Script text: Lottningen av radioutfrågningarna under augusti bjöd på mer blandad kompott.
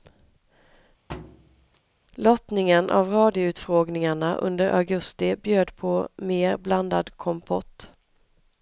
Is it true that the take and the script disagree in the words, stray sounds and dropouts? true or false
true